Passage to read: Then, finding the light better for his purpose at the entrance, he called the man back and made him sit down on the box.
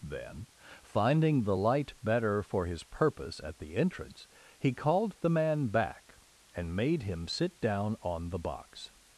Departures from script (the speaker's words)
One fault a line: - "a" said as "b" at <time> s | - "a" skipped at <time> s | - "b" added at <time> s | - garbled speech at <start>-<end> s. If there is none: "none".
none